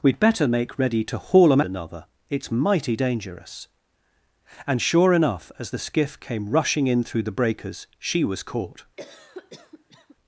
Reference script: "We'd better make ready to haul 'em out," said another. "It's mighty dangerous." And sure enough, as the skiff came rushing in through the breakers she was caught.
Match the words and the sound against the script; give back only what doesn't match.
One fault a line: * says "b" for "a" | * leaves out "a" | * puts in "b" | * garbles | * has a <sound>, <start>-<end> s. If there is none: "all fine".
* leaves out "out said"
* has a cough, 9.0-10.2 s